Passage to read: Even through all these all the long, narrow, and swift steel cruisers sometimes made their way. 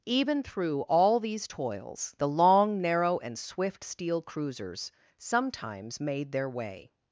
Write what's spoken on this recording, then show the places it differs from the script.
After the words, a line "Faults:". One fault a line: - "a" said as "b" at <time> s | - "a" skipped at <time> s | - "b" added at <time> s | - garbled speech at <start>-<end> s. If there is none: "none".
Even through all these toils the long, narrow, and swift steel cruisers sometimes made their way.
Faults:
- "all" said as "toils" at 1.5 s